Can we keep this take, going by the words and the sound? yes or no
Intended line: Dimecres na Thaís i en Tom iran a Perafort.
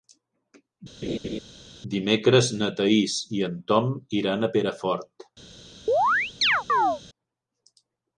no